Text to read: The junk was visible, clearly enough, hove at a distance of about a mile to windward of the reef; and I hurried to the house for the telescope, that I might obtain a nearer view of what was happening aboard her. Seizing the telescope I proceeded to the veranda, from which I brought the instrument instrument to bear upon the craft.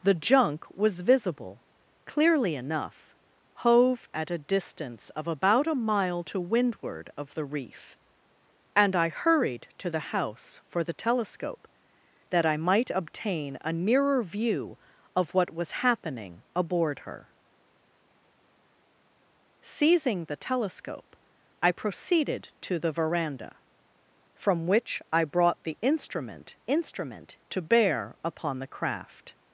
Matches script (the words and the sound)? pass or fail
pass